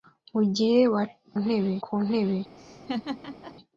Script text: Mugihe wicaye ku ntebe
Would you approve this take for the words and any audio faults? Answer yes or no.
no